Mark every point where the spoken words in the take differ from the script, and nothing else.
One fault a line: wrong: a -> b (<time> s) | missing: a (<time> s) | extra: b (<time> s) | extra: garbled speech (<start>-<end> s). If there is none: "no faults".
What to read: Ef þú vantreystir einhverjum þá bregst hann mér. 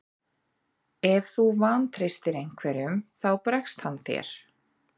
wrong: mér -> þér (4.1 s)